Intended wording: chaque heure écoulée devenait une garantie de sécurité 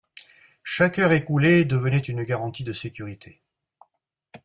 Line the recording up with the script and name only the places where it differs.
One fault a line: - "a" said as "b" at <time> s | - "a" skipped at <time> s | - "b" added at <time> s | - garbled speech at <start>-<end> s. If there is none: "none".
none